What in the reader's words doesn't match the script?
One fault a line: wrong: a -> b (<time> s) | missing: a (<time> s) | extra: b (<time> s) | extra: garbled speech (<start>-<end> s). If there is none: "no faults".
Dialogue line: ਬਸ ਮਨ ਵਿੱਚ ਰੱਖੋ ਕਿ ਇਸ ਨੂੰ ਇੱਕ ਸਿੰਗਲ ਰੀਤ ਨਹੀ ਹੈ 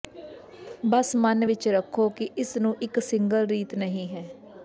no faults